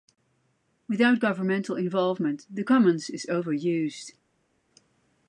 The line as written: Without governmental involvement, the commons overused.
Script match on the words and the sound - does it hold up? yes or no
no